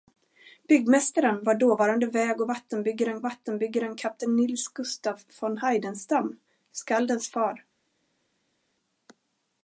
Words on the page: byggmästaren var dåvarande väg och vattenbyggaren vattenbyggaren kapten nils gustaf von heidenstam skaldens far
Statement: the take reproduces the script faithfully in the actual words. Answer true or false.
true